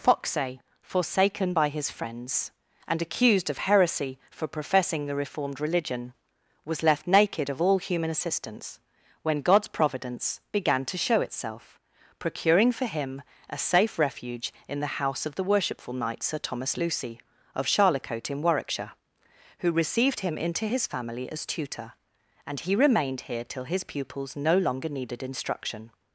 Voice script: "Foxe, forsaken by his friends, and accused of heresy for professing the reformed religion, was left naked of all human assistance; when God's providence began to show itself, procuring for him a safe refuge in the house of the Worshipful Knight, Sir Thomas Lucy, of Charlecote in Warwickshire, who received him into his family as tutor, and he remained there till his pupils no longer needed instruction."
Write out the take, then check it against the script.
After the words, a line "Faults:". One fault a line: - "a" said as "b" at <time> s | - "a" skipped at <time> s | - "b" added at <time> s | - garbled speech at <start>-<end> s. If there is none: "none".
"Foxe, forsaken by his friends, and accused of heresy for professing the reformed religion, was left naked of all human assistance; when God's providence began to show itself, procuring for him a safe refuge in the house of the Worshipful Knight, Sir Thomas Lucy, of Charlecote in Warwickshire, who received him into his family as tutor, and he remained here till his pupils no longer needed instruction."
Faults:
- "there" said as "here" at 23.3 s